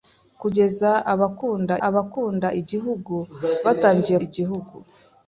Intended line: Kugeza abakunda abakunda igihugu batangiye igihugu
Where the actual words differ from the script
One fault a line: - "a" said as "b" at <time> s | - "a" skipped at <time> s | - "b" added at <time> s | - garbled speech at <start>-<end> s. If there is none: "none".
none